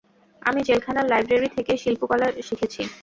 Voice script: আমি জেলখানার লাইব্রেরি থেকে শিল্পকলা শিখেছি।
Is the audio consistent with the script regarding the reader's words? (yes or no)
yes